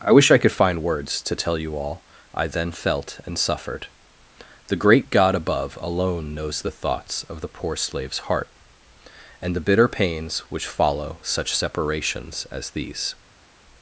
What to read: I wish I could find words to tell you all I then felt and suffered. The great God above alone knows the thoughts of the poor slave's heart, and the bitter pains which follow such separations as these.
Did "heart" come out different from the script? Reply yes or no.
no